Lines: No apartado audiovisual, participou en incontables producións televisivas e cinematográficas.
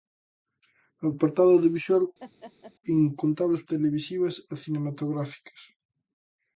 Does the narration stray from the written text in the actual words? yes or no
yes